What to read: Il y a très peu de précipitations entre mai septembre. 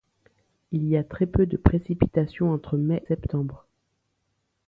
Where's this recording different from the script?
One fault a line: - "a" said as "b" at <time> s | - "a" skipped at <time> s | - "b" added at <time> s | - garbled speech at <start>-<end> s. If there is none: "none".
none